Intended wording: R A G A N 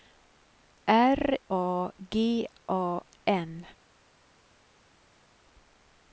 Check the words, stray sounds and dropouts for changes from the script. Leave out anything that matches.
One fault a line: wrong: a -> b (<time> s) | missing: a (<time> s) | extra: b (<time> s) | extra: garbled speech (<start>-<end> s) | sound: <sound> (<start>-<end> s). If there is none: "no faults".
no faults